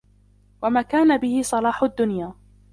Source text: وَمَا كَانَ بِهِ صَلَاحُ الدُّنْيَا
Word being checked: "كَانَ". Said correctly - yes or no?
yes